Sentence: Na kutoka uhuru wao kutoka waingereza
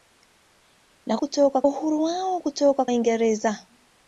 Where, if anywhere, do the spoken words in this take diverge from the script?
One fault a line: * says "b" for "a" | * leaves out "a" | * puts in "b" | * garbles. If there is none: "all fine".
all fine